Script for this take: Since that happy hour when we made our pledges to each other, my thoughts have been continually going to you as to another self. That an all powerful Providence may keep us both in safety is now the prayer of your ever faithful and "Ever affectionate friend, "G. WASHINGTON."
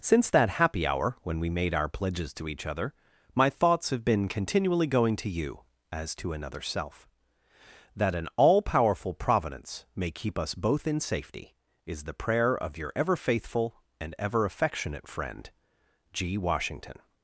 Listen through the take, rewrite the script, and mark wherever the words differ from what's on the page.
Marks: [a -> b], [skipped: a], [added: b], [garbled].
Since that happy hour when we made our pledges to each other, my thoughts have been continually going to you as to another self. That an all powerful Providence may keep us both in safety is [skipped: now] the prayer of your ever faithful and "Ever affectionate friend, "G. WASHINGTON."